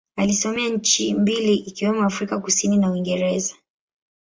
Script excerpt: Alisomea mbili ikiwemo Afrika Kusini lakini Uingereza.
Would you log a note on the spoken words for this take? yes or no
yes